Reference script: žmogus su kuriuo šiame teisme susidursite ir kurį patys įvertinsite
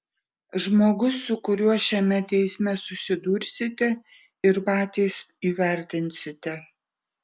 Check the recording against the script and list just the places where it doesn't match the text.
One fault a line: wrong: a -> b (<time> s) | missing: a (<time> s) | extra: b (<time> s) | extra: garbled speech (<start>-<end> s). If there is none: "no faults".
missing: kurį (4.6 s)